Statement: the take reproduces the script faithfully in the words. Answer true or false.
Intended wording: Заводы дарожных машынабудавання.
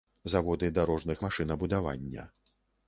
true